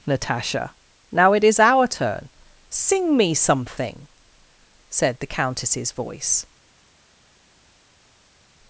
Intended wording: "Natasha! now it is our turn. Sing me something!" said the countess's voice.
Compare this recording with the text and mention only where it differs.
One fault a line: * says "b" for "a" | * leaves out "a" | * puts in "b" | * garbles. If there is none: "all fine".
all fine